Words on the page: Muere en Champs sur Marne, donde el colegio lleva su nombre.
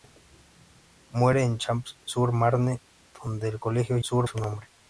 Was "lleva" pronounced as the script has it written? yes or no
no